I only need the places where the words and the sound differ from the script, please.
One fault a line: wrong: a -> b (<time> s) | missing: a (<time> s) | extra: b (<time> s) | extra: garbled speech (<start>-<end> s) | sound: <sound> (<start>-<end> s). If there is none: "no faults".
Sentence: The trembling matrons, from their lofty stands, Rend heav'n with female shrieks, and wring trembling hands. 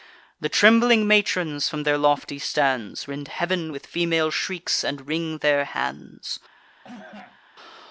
wrong: trembling -> their (5.4 s)
sound: cough (6.8-7.4 s)